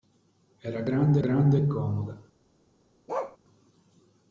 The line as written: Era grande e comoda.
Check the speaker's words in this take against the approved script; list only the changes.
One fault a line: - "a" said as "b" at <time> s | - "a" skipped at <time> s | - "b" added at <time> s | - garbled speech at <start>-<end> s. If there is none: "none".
- "grande" added at 1.2 s